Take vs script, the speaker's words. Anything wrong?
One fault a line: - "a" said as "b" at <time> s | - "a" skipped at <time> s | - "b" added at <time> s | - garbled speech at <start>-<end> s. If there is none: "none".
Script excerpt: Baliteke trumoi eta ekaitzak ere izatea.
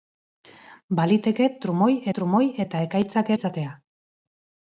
- "trumoi" added at 2.2 s
- "ere" skipped at 3.3 s